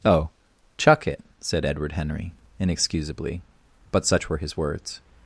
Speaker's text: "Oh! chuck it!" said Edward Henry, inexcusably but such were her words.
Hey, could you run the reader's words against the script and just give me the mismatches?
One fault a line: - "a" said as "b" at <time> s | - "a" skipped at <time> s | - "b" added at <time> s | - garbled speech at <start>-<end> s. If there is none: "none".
- "her" said as "his" at 4.4 s